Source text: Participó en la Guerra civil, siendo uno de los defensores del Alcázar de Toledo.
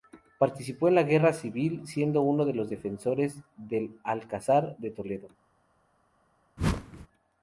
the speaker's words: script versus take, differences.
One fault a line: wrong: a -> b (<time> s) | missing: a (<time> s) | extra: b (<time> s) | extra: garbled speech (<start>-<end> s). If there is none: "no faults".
no faults